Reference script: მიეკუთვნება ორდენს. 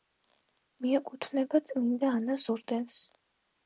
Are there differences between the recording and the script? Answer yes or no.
yes